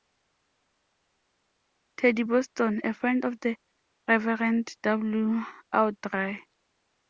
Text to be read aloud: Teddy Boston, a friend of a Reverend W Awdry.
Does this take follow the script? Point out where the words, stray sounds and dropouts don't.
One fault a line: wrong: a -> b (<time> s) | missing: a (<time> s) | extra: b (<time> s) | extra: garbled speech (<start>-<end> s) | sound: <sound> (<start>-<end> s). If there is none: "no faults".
wrong: a -> the (3.4 s)